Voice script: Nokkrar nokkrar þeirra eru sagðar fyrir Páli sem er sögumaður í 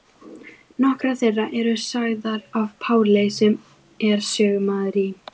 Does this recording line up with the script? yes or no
no